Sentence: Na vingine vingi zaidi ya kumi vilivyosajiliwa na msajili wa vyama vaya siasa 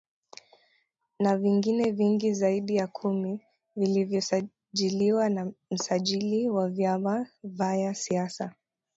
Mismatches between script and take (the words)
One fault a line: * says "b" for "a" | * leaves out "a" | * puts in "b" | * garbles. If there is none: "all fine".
all fine